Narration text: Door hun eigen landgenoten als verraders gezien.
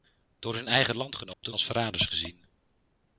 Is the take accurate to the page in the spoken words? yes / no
yes